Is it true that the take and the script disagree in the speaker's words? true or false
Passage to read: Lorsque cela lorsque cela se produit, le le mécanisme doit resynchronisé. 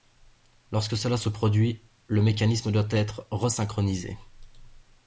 true